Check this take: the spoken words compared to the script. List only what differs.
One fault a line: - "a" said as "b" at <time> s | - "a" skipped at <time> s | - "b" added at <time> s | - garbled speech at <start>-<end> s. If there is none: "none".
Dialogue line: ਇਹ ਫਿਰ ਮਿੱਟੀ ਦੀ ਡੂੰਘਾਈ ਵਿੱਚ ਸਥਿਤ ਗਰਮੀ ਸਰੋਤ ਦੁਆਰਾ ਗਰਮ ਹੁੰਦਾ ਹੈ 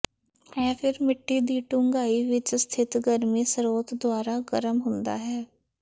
none